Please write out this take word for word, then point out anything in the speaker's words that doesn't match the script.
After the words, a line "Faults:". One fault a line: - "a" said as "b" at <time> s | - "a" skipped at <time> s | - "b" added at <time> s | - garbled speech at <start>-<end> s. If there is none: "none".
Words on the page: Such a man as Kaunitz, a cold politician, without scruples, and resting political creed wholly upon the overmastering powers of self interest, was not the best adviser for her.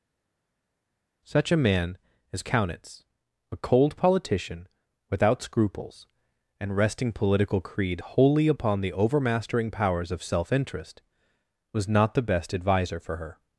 Such a man as Kaunitz, a cold politician, without scruples, and resting political creed wholly upon the overmastering powers of self interest, was not the best adviser for her.
Faults:
none